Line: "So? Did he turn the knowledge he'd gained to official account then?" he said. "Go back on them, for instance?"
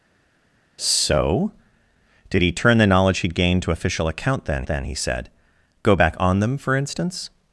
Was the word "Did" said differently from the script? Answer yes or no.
no